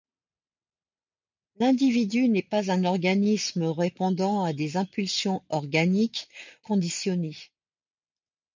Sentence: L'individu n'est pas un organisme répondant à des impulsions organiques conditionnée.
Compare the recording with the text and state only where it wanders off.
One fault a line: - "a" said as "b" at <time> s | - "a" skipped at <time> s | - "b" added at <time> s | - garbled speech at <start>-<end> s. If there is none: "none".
none